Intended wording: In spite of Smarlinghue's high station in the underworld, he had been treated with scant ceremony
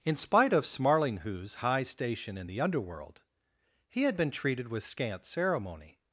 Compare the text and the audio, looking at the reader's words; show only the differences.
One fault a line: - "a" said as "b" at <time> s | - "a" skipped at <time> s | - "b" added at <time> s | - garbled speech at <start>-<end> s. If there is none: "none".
none